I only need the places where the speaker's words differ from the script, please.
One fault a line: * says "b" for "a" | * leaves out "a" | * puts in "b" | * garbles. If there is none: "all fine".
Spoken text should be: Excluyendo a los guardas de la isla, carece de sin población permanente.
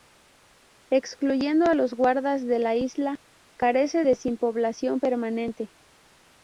all fine